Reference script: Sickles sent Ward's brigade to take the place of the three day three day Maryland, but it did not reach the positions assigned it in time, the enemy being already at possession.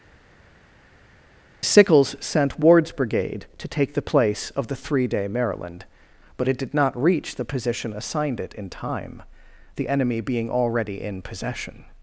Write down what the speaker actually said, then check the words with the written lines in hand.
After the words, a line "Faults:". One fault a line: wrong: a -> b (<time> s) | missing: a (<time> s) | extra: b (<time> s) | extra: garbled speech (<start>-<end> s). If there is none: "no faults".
Sickles sent Ward's brigade to take the place of the three day Maryland, but it did not reach the position assigned it in time, the enemy being already in possession.
Faults:
missing: three day (5.3 s)
wrong: positions -> position (7.4 s)
wrong: at -> in (11.0 s)